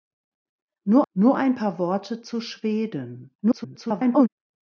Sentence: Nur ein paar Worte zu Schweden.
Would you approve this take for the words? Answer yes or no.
no